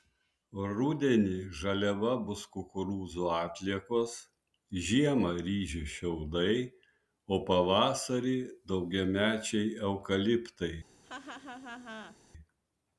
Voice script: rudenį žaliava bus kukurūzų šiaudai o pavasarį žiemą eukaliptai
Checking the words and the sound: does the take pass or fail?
fail